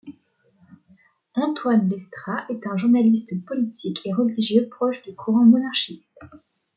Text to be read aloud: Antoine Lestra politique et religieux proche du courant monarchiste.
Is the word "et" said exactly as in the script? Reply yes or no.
yes